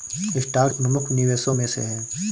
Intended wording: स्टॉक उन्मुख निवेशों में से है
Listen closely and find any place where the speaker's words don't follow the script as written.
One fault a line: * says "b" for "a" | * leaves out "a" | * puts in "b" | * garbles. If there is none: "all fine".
all fine